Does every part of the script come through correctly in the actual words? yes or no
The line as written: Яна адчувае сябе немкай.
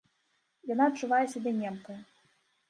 yes